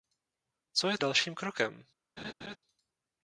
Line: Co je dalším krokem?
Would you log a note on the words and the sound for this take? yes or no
yes